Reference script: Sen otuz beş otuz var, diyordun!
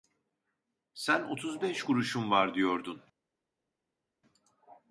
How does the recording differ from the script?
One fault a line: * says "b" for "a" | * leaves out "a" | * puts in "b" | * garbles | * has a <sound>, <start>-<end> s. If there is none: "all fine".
* says "kuruşum" for "otuz"